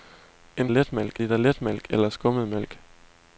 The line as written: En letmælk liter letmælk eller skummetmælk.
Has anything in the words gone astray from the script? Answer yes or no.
no